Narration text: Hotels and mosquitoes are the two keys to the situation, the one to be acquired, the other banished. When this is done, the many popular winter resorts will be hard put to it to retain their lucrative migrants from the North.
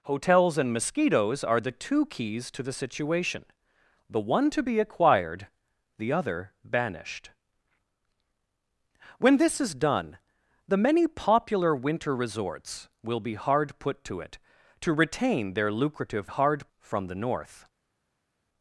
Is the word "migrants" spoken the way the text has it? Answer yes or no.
no